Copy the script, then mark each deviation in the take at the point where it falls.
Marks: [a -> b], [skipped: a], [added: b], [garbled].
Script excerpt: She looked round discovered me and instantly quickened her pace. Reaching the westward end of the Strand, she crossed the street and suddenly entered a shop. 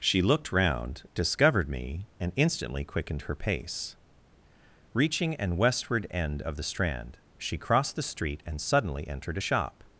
She looked round discovered me and instantly quickened her pace. Reaching [the -> an] westward end of the Strand, she crossed the street and suddenly entered a shop.